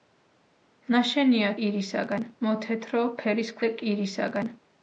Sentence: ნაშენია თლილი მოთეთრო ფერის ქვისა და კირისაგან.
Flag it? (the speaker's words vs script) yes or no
yes